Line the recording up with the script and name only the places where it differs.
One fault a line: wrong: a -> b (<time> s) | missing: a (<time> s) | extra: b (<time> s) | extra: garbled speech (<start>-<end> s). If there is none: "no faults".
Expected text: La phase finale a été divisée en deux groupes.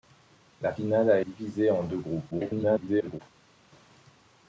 missing: phase (0.7 s)
missing: été (1.2 s)
extra: garbled speech (2.3-3.2 s)